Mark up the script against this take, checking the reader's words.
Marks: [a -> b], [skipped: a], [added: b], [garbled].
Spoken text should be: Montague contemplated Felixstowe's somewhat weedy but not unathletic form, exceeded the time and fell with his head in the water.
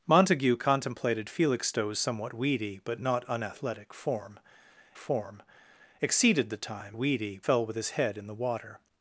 Montague contemplated Felixstowe's somewhat weedy but not unathletic form, [added: form] exceeded the time [and -> weedy] fell with his head in the water.